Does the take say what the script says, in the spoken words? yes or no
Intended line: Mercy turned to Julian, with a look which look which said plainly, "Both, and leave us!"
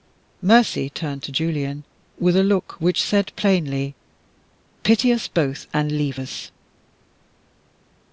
no